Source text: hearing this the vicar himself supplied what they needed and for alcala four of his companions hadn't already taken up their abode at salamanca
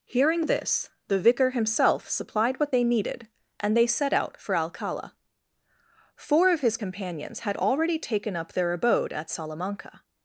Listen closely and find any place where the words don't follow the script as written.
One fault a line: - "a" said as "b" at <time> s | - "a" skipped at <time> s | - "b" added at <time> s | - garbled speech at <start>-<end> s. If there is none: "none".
- "they set out" added at 3.8 s
- "hadn't" said as "had" at 7.4 s